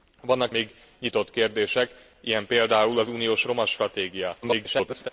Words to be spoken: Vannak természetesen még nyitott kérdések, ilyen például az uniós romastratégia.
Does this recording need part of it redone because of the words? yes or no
yes